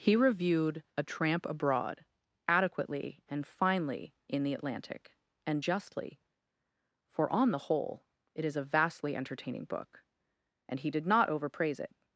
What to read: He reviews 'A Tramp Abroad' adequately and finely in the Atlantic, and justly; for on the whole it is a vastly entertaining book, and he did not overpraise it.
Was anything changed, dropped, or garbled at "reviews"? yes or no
yes